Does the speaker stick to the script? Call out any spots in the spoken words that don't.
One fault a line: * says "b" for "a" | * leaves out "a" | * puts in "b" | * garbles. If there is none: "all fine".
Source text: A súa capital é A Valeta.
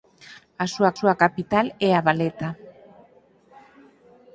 * puts in "súa"